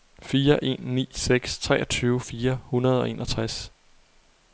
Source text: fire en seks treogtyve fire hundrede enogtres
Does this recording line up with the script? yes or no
no